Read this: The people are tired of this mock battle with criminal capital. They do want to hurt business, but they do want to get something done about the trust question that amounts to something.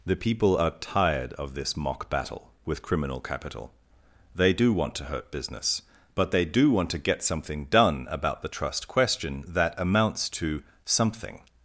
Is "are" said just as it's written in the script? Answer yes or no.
yes